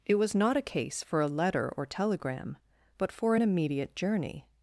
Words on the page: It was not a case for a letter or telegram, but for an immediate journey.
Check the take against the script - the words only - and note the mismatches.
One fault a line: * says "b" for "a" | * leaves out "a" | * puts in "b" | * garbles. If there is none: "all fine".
all fine